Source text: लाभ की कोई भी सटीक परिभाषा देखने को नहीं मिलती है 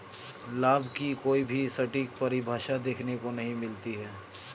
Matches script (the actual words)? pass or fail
pass